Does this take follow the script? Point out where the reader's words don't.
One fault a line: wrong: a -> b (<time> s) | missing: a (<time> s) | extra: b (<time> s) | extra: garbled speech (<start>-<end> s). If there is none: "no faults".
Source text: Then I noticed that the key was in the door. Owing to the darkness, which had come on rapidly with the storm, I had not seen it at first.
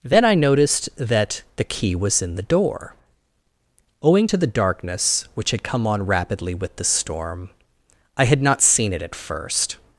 no faults